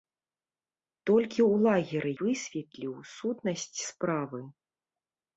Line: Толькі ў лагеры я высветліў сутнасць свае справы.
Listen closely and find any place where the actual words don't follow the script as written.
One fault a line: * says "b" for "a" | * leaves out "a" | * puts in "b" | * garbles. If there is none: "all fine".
* leaves out "я"
* leaves out "свае"